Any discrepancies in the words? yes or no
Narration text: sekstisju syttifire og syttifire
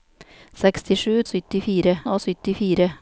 no